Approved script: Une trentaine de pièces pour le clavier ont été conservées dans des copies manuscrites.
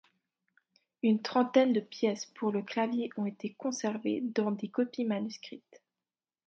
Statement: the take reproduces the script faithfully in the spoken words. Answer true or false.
true